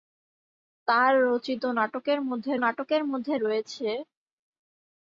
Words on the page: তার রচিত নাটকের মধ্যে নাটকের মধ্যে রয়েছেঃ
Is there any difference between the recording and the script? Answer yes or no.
no